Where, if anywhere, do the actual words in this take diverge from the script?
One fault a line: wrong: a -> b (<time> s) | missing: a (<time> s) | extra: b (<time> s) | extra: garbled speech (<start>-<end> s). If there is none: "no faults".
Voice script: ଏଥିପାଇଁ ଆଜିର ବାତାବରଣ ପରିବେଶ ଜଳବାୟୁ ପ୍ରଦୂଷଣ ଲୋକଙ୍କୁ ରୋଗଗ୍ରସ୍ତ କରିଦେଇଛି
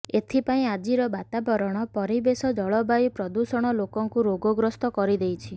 no faults